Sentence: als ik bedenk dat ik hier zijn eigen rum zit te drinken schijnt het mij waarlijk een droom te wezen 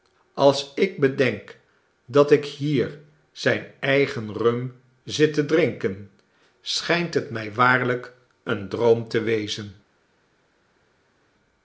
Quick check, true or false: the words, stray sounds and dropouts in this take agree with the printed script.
true